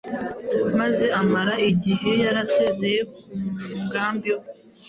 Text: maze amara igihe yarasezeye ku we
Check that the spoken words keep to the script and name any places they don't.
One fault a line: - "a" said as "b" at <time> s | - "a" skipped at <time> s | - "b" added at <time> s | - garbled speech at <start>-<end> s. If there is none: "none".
- "mugambi" added at 3.8 s